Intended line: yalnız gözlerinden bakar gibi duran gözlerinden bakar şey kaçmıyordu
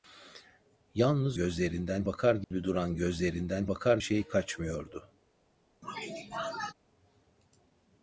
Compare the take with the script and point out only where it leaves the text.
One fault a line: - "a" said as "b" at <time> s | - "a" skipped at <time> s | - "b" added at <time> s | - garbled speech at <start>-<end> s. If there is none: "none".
none